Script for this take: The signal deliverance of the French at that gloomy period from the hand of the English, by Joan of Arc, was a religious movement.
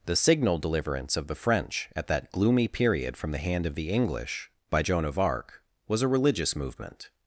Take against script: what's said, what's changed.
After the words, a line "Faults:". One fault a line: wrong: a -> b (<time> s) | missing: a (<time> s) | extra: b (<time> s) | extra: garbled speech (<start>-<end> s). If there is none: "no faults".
The signal deliverance of the French at that gloomy period from the hand of the English, by Joan of Arc, was a religious movement.
Faults:
no faults